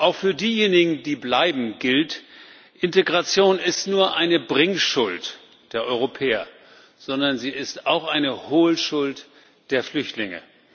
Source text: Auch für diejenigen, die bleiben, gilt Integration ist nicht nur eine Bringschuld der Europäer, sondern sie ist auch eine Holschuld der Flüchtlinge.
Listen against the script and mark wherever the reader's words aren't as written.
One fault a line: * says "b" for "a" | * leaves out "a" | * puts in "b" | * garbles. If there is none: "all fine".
* leaves out "nicht"